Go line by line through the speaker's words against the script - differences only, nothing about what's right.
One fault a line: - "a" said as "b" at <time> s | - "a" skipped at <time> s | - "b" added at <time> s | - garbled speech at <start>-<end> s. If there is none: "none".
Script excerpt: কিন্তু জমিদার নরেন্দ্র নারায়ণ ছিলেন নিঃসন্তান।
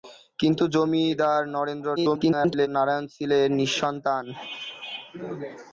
- garbled speech at 2.0-2.7 s